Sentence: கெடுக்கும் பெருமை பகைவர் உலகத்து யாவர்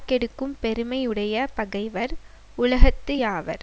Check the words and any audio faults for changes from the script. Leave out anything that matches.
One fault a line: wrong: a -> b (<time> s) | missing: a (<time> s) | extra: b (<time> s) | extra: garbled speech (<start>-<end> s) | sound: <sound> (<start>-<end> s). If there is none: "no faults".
extra: உடைய (1.1 s)